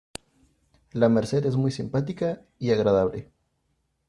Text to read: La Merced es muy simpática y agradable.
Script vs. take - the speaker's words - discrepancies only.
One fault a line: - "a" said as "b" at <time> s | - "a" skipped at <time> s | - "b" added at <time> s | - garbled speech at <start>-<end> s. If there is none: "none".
none